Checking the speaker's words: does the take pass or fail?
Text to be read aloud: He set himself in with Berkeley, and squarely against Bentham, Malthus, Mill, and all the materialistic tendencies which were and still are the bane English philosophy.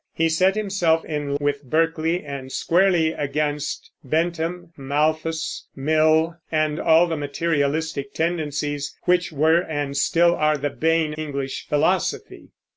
pass